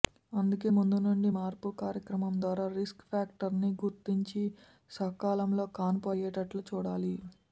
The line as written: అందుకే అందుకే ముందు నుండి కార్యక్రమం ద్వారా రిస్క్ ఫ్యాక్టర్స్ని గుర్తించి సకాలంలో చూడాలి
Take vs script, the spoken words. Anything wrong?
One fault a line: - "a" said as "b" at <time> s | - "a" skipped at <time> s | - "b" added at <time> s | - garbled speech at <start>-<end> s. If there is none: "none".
- "అందుకే" skipped at 0.7 s
- "మార్పు" added at 1.4 s
- "కాన్పు అయ్యేటట్లు" added at 5.8 s